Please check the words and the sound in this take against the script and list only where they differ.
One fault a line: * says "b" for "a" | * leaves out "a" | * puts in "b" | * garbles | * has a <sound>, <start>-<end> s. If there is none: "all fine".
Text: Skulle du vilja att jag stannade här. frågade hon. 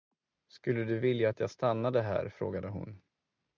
all fine